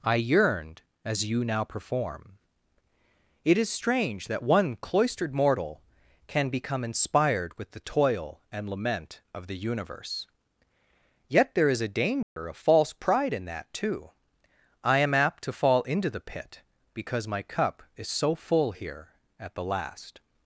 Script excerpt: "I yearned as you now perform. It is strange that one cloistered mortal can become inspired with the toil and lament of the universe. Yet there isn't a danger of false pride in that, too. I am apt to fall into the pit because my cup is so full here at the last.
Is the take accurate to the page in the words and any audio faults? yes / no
no